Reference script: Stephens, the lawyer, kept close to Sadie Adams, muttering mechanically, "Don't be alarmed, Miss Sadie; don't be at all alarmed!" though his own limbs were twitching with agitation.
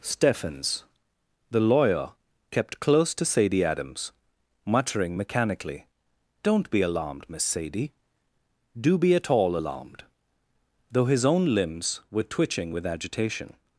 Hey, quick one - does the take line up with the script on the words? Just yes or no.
no